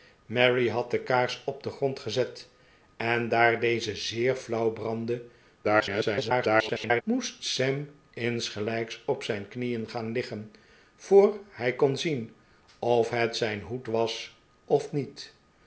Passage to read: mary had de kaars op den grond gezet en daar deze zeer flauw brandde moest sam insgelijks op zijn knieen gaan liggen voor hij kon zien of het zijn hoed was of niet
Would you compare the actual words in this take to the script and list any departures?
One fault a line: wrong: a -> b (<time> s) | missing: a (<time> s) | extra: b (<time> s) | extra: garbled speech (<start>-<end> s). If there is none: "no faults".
extra: garbled speech (5.6-7.0 s)